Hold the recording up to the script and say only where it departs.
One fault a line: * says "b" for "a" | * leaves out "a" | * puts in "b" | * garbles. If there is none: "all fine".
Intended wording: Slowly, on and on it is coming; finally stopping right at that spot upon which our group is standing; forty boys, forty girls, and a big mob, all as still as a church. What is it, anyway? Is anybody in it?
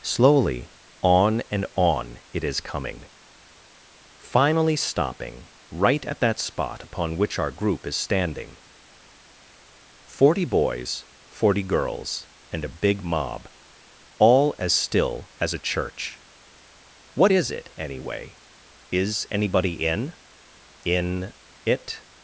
* puts in "in"